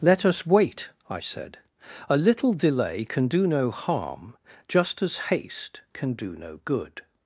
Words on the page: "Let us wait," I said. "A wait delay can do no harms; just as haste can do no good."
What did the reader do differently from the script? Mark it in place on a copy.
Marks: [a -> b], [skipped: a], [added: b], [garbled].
"Let us wait," I said. "A [wait -> little] delay can do no [harms; -> harm] just as haste can do no good."